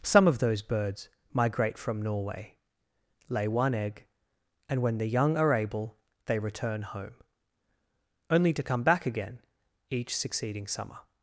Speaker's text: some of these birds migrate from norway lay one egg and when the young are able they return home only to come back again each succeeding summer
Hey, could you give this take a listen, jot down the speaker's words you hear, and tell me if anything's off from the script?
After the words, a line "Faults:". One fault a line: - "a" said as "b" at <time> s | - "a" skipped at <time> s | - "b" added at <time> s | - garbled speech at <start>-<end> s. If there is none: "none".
some of those birds migrate from norway lay one egg and when the young are able they return home only to come back again each succeeding summer
Faults:
- "these" said as "those" at 0.4 s